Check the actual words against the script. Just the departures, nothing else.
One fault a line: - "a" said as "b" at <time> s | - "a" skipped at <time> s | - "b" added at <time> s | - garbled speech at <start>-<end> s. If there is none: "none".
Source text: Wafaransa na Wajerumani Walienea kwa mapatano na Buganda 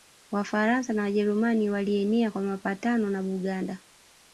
none